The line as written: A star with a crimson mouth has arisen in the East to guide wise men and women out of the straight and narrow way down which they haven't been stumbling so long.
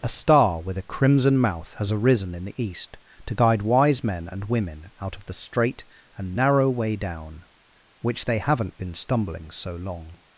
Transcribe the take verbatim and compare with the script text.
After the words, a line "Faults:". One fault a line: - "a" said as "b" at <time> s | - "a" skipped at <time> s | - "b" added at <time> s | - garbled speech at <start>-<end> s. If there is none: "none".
A star with a crimson mouth has arisen in the East to guide wise men and women out of the straight and narrow way down which they haven't been stumbling so long.
Faults:
none